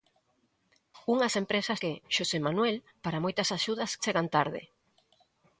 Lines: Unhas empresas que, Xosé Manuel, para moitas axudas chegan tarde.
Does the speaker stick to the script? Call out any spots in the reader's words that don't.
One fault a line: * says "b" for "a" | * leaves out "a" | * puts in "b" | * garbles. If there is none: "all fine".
all fine